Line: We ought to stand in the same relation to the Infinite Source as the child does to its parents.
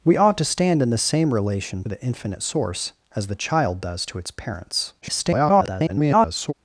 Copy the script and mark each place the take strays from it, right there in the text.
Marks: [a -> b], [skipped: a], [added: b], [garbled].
We ought to stand in the same relation [skipped: to] the Infinite Source as the child does to its parents. [garbled]